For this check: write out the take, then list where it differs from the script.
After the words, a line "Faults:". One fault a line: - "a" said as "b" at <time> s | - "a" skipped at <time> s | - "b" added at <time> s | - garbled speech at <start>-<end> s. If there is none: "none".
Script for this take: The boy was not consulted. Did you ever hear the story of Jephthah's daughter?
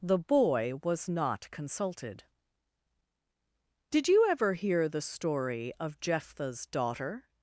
The boy was not consulted. Did you ever hear the story of Jephthah's daughter?
Faults:
none